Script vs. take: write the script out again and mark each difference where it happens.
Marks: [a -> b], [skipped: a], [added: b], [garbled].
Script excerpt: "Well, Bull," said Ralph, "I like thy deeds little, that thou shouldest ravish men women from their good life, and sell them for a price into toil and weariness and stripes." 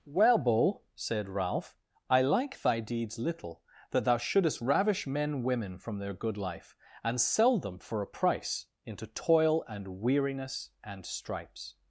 "Well, Bull," said Ralph, "I like thy deeds little, that thou shouldest ravish men women from their good life, and sell them for a price into toil and weariness and stripes."